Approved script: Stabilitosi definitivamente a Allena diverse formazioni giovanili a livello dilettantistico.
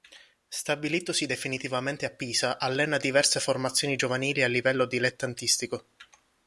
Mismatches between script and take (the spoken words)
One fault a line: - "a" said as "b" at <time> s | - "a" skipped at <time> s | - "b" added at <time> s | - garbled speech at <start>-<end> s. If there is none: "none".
- "Pisa" added at 2.1 s